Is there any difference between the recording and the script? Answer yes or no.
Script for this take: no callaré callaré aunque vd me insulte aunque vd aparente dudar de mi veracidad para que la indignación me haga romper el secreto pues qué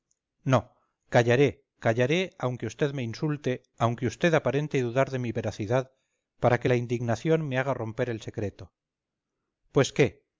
no